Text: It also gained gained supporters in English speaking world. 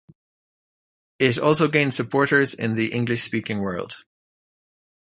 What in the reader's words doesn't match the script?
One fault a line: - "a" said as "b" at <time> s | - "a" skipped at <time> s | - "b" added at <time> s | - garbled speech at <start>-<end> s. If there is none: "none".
- "gained" skipped at 1.9 s
- "the" added at 2.7 s